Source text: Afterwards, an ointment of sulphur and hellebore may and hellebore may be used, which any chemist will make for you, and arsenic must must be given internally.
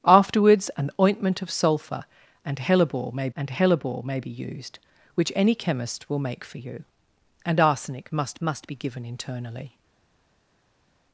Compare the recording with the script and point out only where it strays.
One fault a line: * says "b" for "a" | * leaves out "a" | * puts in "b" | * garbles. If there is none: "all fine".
all fine